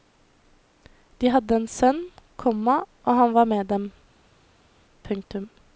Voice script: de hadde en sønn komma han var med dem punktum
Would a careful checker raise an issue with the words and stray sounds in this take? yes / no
yes